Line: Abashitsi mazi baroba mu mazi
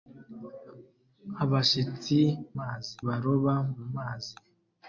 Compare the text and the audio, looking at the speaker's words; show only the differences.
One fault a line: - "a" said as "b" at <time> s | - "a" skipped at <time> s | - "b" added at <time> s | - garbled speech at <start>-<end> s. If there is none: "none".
none